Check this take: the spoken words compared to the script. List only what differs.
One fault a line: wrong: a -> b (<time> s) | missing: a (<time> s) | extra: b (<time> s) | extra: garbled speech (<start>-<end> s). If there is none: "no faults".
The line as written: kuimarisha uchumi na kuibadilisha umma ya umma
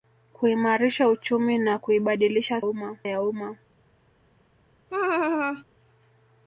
no faults